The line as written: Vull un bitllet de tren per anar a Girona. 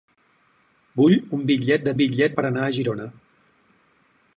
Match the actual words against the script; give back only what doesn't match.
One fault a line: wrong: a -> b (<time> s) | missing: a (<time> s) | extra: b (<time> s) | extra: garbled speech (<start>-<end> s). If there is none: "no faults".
wrong: tren -> bitllet (2.0 s)